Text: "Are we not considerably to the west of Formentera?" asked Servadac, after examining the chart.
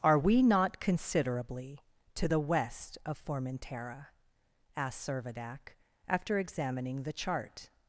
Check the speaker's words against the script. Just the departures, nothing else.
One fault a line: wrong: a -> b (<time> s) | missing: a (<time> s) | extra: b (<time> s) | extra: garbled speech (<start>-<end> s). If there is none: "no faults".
no faults